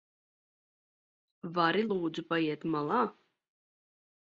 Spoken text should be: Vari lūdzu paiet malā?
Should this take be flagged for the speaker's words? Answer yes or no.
no